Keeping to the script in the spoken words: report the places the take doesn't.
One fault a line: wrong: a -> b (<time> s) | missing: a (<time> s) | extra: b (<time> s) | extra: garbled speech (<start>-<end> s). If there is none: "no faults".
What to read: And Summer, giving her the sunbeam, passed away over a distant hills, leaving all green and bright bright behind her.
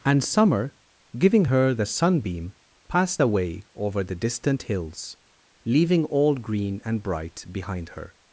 wrong: a -> the (4.0 s)
missing: bright (7.5 s)